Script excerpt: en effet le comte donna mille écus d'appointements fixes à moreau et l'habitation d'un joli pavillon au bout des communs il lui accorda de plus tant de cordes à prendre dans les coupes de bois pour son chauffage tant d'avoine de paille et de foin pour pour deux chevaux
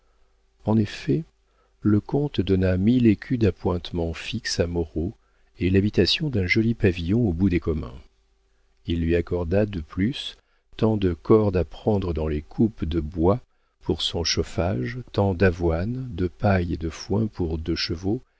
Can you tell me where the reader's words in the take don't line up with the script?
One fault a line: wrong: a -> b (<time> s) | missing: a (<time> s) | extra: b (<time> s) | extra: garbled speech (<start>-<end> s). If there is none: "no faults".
missing: pour (17.6 s)